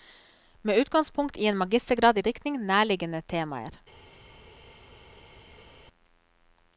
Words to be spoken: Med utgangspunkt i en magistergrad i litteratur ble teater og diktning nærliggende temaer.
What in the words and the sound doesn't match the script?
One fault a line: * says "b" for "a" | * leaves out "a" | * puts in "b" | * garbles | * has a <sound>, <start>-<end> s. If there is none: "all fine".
* leaves out "litteratur ble teater"